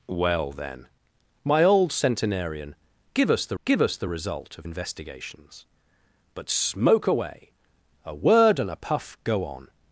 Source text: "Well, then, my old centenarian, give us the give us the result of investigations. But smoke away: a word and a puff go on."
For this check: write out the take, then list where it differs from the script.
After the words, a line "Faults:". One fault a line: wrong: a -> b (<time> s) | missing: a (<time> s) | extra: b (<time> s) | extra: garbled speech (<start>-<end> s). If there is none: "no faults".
"Well, then, my old centenarian, give us the give us the result of investigations. But smoke away: a word and a puff go on."
Faults:
no faults